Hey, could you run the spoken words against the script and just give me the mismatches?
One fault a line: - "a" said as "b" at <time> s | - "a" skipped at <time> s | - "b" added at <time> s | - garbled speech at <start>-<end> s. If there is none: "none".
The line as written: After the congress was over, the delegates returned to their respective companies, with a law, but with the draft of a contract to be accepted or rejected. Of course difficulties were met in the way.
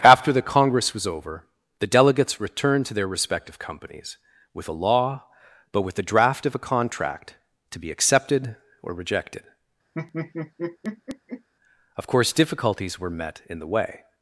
none